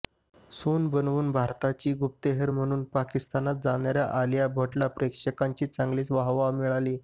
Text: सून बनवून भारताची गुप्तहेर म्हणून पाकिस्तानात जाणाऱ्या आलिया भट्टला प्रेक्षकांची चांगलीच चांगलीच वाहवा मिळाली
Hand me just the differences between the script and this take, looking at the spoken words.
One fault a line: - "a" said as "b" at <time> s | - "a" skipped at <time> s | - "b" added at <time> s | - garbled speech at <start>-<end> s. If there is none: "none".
- "चांगलीच" skipped at 6.1 s